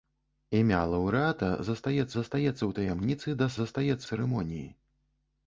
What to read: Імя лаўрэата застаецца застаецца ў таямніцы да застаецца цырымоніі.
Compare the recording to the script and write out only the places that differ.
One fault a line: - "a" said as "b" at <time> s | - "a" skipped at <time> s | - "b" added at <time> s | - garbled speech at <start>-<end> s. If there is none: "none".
none